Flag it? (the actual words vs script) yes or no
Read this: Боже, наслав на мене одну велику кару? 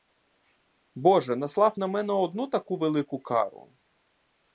yes